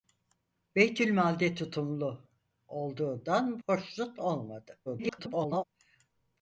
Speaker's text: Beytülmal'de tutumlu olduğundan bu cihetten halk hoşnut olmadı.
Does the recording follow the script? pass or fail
fail